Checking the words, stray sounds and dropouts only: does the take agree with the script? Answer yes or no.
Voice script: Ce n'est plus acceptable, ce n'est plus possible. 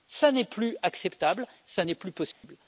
no